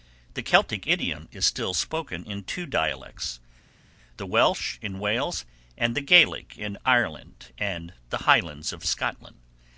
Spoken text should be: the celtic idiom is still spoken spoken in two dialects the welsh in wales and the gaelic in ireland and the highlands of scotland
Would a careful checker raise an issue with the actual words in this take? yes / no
yes